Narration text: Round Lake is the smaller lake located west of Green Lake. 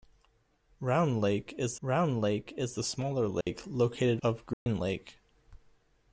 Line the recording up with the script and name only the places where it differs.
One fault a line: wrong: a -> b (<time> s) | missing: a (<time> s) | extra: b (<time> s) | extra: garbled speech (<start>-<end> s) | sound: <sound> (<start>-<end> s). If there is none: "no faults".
extra: round Lake is (1.8 s)
sound: dropout (3.4-3.5 s)
missing: west (4.2 s)
sound: dropout (4.5-4.7 s)